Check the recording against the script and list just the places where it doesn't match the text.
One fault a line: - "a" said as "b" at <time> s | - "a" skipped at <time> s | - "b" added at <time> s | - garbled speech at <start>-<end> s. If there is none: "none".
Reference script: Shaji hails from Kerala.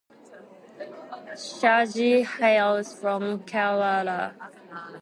none